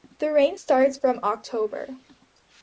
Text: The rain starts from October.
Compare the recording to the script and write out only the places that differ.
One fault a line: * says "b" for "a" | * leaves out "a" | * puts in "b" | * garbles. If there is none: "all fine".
all fine